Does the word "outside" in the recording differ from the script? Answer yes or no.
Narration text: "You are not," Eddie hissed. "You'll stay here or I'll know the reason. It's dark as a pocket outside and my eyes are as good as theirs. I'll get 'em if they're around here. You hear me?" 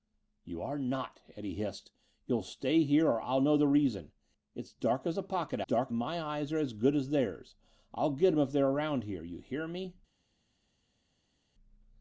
yes